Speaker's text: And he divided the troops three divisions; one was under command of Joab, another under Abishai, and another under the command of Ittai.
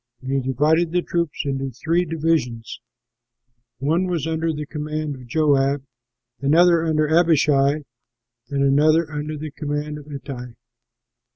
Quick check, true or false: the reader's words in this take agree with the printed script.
false